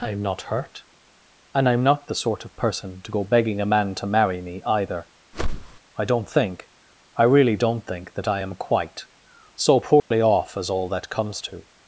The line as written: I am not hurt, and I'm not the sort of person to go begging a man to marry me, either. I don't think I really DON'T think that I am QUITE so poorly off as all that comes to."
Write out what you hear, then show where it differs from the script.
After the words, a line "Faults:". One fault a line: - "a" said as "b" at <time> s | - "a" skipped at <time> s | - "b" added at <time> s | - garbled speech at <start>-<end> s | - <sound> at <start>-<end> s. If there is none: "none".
I am not hurt, and I'm not the sort of person to go begging a man to marry me, either. I don't think I really DON'T think that I am QUITE so poorly off as all that comes to."
Faults:
- whoosh at 5.3-5.8 s
- dropout at 10.0-10.1 s